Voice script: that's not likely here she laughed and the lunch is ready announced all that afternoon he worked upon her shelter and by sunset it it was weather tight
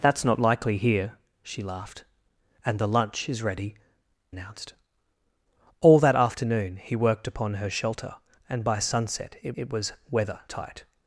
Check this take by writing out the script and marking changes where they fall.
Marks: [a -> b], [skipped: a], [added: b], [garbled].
that's not likely here she laughed and the lunch is ready announced all that afternoon he worked upon her shelter and by sunset it it was weather tight